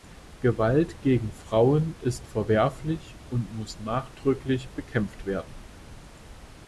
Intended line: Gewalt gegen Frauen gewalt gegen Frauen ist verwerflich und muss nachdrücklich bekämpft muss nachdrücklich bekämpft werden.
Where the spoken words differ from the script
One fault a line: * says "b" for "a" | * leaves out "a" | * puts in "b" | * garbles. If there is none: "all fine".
* leaves out "gewalt gegen Frauen"
* leaves out "muss nachdrücklich bekämpft"